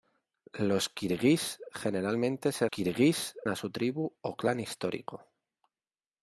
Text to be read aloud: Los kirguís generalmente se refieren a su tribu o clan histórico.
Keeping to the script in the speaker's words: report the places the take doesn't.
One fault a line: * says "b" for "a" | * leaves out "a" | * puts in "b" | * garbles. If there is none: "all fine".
* says "kirguís" for "refieren"